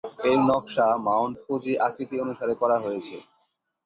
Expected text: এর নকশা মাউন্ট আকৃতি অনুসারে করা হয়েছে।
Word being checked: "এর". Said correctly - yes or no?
yes